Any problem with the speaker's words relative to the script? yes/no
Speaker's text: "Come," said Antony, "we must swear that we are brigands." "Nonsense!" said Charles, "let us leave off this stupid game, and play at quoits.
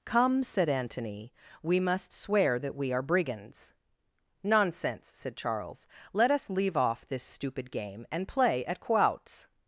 no